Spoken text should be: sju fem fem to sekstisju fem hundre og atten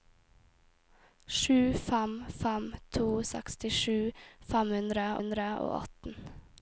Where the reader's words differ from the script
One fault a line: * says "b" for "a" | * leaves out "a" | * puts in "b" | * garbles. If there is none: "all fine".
* puts in "hundre"